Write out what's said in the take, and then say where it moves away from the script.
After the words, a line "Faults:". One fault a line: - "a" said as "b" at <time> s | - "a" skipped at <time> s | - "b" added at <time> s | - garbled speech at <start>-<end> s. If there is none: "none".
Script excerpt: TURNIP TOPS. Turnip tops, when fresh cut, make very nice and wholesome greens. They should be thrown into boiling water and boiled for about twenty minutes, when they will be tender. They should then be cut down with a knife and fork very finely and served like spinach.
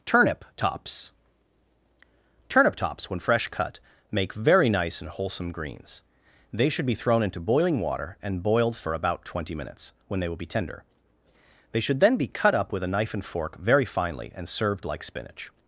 TURNIP TOPS. Turnip tops, when fresh cut, make very nice and wholesome greens. They should be thrown into boiling water and boiled for about twenty minutes, when they will be tender. They should then be cut up with a knife and fork very finely and served like spinach.
Faults:
- "down" said as "up" at 12.5 s